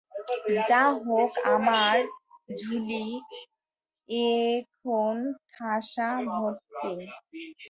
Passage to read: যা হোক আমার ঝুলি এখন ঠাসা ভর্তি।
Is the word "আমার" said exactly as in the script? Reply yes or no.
yes